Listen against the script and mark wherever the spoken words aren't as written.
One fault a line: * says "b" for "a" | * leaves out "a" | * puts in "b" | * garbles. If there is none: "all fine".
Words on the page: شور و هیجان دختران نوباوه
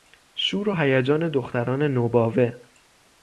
all fine